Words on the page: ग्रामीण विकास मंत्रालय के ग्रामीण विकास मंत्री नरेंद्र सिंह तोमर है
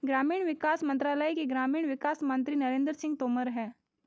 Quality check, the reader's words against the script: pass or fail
pass